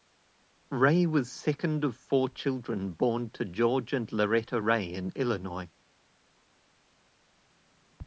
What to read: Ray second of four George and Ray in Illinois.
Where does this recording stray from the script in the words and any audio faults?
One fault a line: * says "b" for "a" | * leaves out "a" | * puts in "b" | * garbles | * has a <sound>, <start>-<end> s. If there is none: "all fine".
* puts in "was"
* puts in "children born to"
* puts in "Loretta"